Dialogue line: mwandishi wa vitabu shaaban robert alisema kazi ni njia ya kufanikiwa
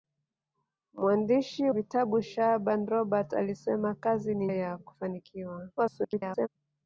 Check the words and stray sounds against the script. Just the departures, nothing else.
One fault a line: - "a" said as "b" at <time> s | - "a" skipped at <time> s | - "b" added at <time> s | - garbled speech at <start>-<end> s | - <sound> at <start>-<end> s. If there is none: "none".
- "wa" skipped at 1.7 s
- "njia" skipped at 4.5 s
- garbled speech at 5.8-6.5 s